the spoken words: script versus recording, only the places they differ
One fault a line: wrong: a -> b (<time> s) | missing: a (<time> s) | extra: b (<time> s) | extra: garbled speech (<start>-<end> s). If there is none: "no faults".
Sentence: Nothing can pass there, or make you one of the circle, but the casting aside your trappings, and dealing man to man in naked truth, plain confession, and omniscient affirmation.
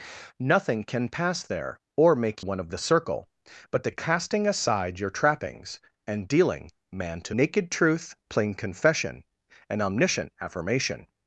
missing: you (2.4 s)
missing: man in (7.3 s)